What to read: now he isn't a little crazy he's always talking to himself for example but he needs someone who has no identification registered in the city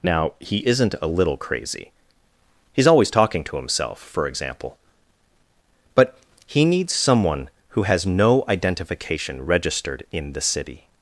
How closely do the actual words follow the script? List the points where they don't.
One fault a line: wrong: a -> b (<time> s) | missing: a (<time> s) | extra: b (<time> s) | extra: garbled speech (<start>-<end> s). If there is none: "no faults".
no faults